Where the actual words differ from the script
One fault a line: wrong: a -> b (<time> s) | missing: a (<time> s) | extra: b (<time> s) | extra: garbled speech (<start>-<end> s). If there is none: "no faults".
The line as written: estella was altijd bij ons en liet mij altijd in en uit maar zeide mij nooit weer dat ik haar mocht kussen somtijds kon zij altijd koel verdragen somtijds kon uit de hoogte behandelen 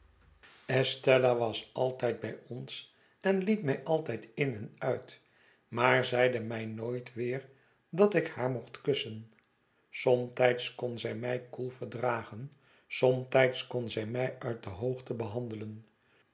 wrong: altijd -> mij (11.2 s)
extra: zij mij (13.9 s)